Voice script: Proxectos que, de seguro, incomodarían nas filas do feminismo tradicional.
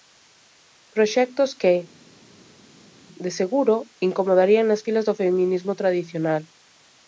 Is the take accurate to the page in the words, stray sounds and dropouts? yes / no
yes